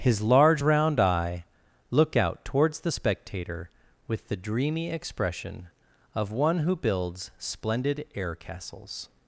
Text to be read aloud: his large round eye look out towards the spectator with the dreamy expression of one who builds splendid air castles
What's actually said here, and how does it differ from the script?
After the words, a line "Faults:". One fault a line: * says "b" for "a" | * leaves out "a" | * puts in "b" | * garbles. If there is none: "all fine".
his large round eye look out towards the spectator with the dreamy expression of one who builds splendid air castles
Faults:
all fine